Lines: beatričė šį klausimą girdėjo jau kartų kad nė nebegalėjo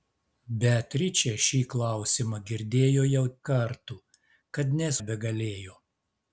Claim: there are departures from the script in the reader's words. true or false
false